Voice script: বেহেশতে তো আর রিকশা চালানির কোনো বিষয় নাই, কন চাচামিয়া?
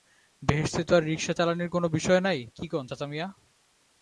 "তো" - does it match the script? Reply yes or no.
yes